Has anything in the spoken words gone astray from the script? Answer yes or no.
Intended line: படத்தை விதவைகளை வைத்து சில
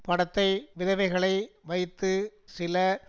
no